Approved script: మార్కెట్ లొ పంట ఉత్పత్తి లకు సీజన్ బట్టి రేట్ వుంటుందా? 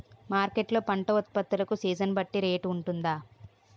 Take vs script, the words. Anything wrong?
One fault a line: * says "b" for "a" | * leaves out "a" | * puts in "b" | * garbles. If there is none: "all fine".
all fine